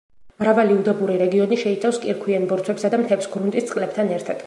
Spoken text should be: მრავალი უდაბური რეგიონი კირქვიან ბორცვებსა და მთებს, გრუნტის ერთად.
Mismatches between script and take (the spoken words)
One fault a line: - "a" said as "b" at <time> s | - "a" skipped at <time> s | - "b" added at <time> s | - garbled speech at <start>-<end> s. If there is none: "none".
- "შეიცავს" added at 1.6 s
- "წყლებთან" added at 3.7 s